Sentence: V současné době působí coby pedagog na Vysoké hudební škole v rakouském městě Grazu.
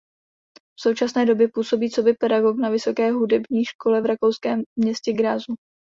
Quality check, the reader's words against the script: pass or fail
pass